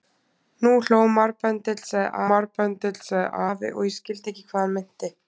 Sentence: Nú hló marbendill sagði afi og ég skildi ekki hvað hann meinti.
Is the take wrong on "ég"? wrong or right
right